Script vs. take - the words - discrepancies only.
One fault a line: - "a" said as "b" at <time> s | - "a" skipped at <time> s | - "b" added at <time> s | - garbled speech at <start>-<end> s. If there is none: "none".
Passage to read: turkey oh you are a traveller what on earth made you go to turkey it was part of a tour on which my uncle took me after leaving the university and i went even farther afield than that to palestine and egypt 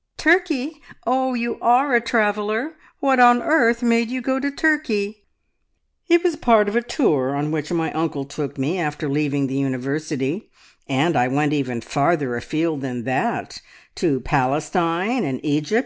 none